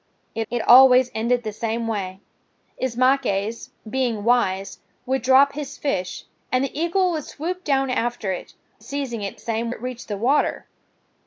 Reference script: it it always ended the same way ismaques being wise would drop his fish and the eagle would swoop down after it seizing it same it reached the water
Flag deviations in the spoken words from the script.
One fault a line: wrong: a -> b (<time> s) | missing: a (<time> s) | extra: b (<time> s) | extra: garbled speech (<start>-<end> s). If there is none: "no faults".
no faults